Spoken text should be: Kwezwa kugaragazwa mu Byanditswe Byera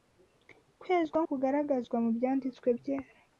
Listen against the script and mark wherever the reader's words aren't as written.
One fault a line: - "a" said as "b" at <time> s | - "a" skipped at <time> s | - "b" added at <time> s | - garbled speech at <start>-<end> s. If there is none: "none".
none